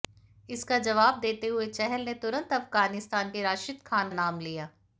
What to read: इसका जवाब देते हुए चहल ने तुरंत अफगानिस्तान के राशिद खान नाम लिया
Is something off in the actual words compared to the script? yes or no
no